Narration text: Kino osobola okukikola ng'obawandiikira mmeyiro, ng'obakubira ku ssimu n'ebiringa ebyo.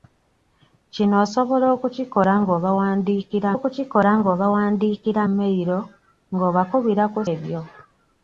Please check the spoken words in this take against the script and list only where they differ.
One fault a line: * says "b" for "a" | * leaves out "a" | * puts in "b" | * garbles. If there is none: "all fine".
* puts in "okukikola ng'obawandiikira"
* leaves out "ssimu n'ebiringa"